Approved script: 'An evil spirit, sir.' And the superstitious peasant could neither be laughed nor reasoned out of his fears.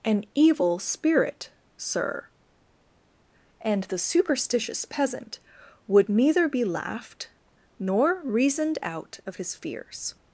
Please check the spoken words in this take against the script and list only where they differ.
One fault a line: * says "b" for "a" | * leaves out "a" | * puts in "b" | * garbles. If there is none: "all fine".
* says "would" for "could"